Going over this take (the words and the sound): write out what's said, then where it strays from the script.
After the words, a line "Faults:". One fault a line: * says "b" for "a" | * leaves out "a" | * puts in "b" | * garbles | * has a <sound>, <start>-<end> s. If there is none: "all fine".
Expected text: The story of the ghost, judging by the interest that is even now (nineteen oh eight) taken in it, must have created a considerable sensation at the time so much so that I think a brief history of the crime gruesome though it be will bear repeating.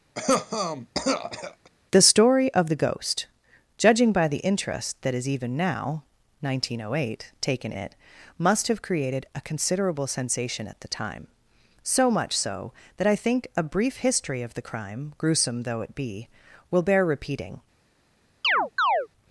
The story of the ghost, judging by the interest that is even now (nineteen oh eight) taken it, must have created a considerable sensation at the time so much so that I think a brief history of the crime gruesome though it be will bear repeating.
Faults:
* has a cough, 0.1-1.7 s
* leaves out "in"
* has a chirp, 18.4-19.1 s